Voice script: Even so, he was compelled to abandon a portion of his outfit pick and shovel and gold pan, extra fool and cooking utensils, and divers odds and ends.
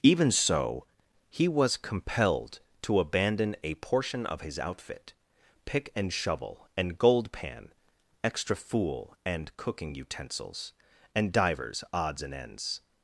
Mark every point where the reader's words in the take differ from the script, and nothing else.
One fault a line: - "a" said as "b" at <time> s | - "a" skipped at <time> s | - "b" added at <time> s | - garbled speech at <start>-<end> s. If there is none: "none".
none